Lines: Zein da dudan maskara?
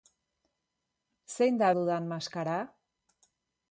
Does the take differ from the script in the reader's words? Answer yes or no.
no